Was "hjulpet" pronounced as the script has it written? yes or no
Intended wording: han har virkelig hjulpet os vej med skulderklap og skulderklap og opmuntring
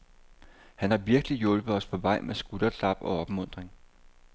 yes